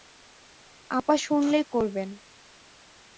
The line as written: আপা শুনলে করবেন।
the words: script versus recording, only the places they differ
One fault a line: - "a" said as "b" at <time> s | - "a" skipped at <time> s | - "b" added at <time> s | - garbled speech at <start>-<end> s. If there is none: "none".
none